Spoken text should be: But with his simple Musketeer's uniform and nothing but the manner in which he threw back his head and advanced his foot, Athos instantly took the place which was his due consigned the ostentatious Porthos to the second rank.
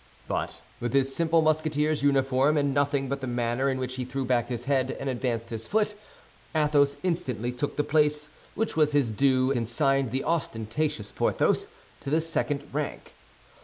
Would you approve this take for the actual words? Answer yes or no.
yes